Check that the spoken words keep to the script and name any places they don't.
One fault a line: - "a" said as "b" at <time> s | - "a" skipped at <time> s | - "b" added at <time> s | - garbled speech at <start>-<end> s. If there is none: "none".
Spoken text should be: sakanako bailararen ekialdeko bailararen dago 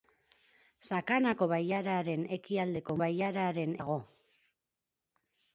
none